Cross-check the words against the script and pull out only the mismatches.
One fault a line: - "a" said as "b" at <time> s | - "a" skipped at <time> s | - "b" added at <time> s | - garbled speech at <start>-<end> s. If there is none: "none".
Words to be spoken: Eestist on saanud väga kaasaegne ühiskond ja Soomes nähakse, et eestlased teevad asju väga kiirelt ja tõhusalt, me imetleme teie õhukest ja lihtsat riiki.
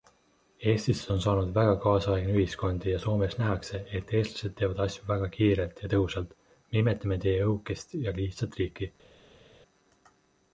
none